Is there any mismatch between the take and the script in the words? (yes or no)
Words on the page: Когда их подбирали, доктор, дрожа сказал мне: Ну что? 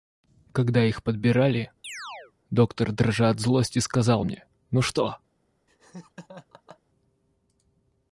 yes